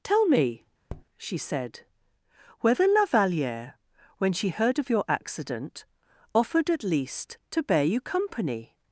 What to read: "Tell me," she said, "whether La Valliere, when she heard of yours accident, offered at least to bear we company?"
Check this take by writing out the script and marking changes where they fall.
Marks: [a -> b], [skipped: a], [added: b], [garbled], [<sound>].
"Tell me," [tap] she said, "whether La Valliere, when she heard of [yours -> your] accident, offered at least to bear [we -> you] company?"